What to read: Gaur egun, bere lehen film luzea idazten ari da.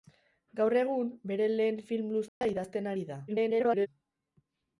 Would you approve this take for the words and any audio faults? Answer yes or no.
no